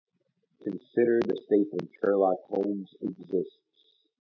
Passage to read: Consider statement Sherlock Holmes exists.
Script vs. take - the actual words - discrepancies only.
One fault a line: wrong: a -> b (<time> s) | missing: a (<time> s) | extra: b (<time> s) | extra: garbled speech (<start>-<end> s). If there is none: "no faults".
extra: the (1.2 s)